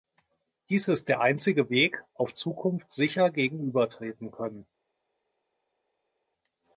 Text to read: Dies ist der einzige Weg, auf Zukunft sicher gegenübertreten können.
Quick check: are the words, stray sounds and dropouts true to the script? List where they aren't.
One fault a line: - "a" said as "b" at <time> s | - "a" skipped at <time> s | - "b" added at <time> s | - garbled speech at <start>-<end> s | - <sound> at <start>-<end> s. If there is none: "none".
none